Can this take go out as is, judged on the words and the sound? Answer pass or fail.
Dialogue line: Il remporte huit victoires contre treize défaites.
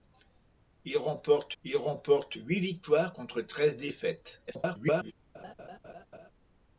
fail